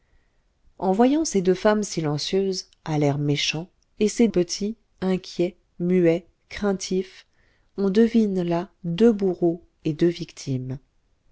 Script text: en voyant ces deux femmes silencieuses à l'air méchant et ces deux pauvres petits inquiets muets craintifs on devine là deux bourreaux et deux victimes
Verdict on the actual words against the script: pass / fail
fail